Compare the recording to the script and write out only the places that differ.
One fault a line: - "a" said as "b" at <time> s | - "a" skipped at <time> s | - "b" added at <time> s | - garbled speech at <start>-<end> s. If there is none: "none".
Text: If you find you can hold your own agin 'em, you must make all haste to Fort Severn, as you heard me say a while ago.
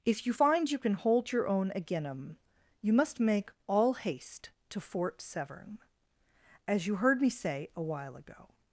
none